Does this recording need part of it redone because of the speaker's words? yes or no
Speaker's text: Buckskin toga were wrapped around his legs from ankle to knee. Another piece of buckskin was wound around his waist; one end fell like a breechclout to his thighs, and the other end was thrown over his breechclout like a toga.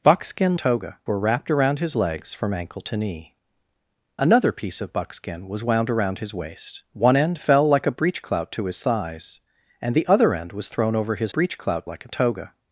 no